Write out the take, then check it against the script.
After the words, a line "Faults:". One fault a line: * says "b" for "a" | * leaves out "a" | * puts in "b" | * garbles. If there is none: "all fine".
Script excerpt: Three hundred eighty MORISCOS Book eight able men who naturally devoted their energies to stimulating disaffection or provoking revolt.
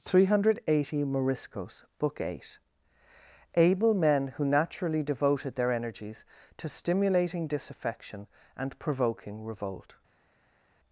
Three hundred eighty MORISCOS Book eight able men who naturally devoted their energies to stimulating disaffection and provoking revolt.
Faults:
* says "and" for "or"